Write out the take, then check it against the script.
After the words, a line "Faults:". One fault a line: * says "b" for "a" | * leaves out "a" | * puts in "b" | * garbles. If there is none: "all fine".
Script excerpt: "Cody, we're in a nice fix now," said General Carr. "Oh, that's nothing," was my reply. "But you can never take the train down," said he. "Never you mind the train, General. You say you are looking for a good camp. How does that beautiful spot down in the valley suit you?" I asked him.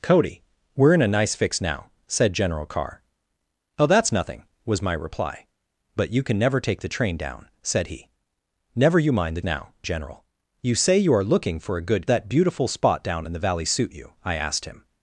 "Cody, we're in a nice fix now," said General Carr. "Oh, that's nothing," was my reply. "But you can never take the train down," said he. "Never you mind the now, General. You say you are looking for a good that beautiful spot down in the valley suit you?" I asked him.
Faults:
* says "now" for "train"
* leaves out "camp How does"